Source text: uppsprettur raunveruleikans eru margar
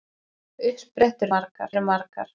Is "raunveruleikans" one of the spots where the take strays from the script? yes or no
yes